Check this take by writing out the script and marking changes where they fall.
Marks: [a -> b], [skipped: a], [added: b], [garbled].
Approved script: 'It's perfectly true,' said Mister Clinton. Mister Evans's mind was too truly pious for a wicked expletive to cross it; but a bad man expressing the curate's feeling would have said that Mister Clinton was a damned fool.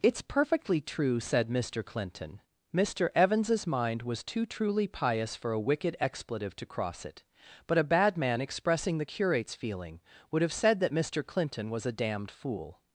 'It's perfectly true,' said Mister Clinton. Mister Evans's mind was too truly pious for a wicked expletive to cross it; but a bad man expressing the curate's feeling would have said that Mister Clinton was a damned fool.